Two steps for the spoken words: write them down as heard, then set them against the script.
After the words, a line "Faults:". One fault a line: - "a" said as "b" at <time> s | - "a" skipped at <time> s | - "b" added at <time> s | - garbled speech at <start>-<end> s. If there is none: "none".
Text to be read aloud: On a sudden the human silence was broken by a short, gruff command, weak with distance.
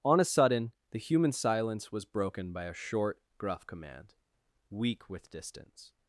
On a sudden the human silence was broken by a short, gruff command, weak with distance.
Faults:
none